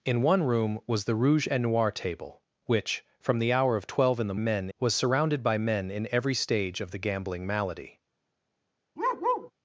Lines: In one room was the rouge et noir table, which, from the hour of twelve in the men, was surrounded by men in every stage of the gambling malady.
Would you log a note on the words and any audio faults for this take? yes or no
yes